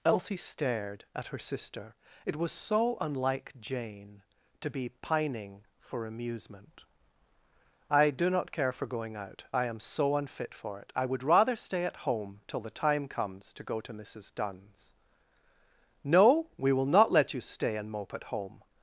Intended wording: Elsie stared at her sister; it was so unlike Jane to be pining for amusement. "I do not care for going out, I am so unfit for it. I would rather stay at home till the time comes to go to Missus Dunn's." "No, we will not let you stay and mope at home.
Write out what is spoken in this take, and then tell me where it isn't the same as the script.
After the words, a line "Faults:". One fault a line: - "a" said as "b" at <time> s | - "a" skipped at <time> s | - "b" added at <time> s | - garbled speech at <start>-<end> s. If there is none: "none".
Elsie stared at her sister; it was so unlike Jane to be pining for amusement. "I do not care for going out, I am so unfit for it. I would rather stay at home till the time comes to go to Missus Dunn's." "No, we will not let you stay and mope at home.
Faults:
none